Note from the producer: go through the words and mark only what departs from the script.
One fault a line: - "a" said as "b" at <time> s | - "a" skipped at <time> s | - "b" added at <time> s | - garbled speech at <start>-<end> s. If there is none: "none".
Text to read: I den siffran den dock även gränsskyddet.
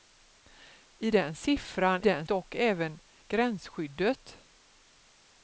none